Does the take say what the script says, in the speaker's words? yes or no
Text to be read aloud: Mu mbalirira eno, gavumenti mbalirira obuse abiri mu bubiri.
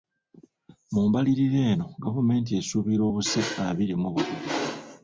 no